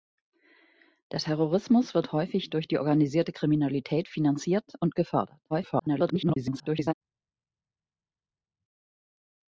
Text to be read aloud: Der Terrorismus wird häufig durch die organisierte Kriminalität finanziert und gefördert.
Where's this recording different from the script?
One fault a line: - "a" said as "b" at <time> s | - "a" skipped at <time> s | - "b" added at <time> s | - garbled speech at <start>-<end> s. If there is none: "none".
- garbled speech at 5.5-6.9 s